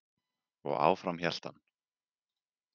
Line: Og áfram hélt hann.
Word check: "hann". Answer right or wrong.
right